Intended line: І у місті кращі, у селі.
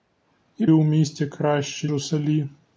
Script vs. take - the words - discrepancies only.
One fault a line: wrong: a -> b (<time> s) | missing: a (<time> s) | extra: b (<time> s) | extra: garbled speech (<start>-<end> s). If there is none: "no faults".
no faults